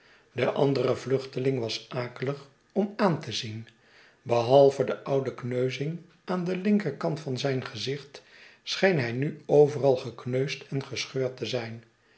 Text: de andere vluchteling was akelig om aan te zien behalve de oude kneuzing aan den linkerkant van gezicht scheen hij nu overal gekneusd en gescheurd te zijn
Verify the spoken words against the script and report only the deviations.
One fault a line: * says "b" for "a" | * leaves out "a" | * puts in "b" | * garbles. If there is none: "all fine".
* puts in "zijn"